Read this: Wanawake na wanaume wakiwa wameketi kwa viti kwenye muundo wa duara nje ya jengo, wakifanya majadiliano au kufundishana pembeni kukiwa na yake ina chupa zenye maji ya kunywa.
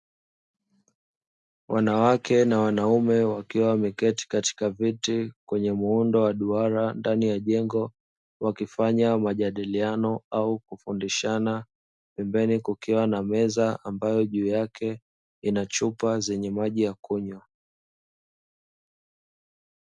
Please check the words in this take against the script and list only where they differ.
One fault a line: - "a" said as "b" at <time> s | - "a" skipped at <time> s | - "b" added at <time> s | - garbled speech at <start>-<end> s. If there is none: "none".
- "kwa" said as "katika" at 4.3 s
- "nje" said as "ndani" at 6.9 s
- "meza ambayo juu" added at 13.2 s